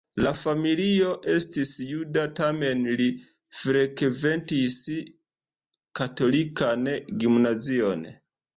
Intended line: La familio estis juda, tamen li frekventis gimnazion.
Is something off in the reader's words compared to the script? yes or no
yes